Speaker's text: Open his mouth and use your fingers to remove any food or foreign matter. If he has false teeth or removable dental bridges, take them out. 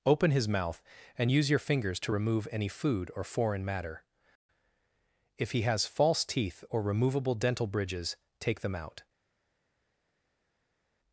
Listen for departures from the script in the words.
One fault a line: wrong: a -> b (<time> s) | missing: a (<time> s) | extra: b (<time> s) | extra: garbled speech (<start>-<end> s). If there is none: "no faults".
no faults